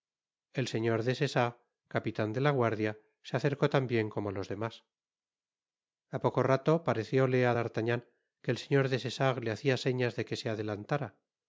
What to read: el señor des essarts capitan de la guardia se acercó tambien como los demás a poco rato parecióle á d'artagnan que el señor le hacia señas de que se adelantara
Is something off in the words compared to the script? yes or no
yes